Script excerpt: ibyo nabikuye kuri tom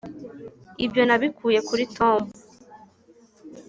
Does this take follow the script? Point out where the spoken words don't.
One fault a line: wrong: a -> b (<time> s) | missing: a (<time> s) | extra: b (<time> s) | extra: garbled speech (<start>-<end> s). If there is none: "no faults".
no faults